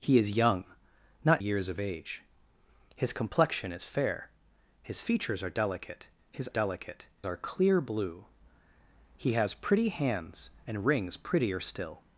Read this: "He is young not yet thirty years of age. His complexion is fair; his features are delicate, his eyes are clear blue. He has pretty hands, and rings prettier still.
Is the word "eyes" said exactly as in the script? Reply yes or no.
no